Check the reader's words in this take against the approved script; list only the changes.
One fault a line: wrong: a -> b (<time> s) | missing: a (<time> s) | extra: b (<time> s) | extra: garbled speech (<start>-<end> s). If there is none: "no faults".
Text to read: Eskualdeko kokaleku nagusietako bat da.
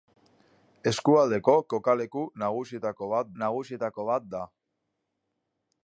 extra: nagusietako bat (3.4 s)